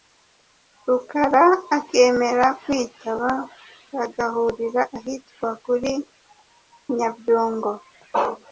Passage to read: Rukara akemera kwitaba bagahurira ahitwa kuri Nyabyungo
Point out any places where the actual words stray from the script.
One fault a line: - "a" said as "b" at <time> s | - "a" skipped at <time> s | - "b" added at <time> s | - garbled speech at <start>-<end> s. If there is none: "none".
none